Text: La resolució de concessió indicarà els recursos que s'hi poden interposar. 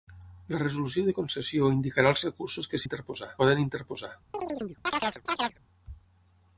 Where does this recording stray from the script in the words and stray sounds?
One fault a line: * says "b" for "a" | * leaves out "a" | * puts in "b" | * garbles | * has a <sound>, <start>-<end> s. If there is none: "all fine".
* says "interposar" for "s'hi"
* has a chirp, 4.3-5.6 s